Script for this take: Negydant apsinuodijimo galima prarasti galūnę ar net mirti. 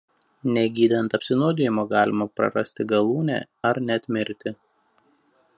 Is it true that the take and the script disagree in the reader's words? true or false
false